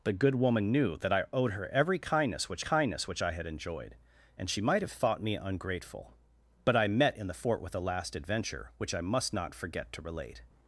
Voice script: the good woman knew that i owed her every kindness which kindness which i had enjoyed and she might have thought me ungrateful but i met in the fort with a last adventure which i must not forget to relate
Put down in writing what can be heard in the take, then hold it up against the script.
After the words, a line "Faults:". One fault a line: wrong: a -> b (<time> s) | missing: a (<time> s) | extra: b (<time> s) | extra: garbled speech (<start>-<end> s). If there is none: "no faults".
the good woman knew that i owed her every kindness which kindness which i had enjoyed and she might have thought me ungrateful but i met in the fort with a last adventure which i must not forget to relate
Faults:
no faults